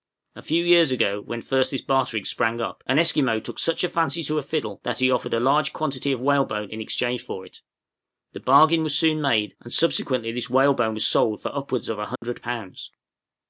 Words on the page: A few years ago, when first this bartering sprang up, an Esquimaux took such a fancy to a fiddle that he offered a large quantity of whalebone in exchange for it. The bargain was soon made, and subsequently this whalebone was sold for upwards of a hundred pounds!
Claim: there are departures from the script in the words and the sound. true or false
true